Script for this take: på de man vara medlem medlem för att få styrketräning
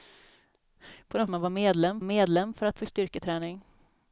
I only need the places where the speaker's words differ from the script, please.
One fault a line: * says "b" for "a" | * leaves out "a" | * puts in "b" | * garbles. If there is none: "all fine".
all fine